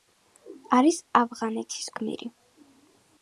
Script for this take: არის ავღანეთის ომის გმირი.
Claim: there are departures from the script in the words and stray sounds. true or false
true